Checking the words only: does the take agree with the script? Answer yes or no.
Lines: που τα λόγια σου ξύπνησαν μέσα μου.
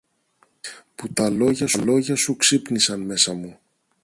yes